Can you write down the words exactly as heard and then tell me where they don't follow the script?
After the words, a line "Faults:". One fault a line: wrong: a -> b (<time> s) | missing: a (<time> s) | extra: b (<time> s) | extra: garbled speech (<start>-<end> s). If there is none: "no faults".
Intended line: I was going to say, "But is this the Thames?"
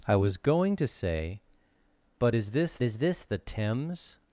I was going to say, "But is this is this the Thames?"
Faults:
extra: is this (2.8 s)